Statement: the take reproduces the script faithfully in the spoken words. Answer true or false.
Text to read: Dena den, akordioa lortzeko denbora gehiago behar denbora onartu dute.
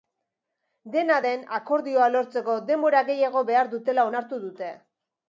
false